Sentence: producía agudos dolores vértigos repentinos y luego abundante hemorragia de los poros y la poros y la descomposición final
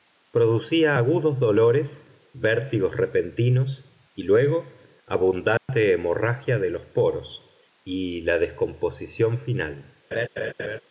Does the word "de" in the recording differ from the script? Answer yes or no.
no